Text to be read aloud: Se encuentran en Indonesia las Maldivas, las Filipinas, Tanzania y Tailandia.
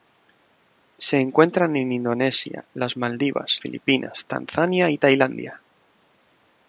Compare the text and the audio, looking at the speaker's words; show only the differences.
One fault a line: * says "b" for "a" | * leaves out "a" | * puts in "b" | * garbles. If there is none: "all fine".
* leaves out "las"